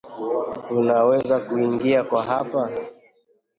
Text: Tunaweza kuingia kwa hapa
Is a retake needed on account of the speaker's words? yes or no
no